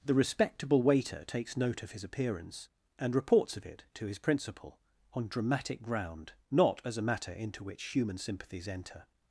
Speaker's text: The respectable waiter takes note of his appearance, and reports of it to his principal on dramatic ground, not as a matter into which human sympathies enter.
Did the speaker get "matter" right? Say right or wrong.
right